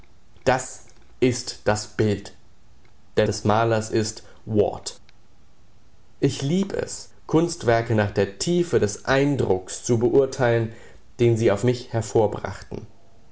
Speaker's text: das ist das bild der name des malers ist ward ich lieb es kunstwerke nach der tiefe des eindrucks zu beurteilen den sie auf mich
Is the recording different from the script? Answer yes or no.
yes